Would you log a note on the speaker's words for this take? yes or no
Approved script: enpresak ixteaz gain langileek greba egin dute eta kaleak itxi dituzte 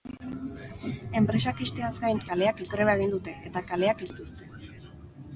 yes